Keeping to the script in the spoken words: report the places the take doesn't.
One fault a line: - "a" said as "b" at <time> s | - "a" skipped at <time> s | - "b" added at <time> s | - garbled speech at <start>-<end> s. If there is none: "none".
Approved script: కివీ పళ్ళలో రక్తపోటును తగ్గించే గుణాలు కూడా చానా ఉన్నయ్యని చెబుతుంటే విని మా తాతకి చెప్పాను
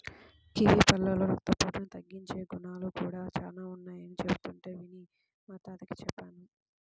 none